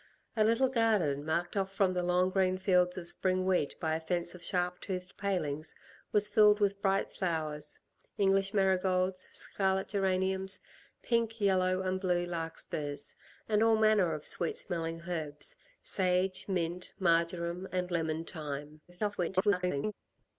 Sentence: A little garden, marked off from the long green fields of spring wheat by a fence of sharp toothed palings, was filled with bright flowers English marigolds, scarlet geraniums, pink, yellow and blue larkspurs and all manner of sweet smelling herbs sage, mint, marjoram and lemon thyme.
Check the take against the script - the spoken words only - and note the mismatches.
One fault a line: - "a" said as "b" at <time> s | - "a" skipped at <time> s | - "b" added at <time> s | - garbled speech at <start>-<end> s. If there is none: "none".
- garbled speech at 18.9-19.9 s